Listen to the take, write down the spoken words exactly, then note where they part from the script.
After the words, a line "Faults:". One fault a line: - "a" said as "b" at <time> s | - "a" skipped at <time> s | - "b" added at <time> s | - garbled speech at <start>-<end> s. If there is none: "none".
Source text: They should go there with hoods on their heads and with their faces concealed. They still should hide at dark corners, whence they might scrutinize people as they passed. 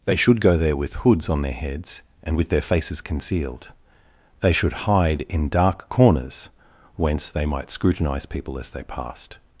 They should go there with hoods on their heads and with their faces concealed. They should hide in dark corners, whence they might scrutinize people as they passed.
Faults:
- "still" skipped at 4.5 s
- "at" said as "in" at 5.3 s